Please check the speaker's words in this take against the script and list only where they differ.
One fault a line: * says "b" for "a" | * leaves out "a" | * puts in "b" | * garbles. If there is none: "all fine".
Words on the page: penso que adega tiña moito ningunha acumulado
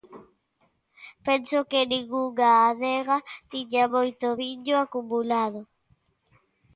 * puts in "ningunha"
* says "viño" for "ningunha"